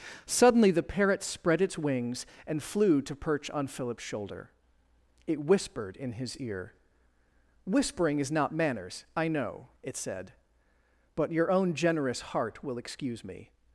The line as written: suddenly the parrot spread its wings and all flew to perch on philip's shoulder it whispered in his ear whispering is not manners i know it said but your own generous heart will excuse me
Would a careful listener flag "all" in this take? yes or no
yes